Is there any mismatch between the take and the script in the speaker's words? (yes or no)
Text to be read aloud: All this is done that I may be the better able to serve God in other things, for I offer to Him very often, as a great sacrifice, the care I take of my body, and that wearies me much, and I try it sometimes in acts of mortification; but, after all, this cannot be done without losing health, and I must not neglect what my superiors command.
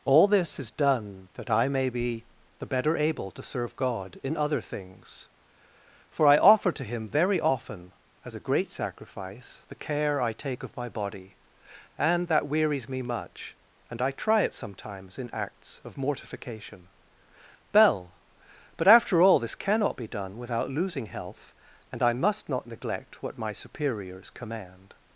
yes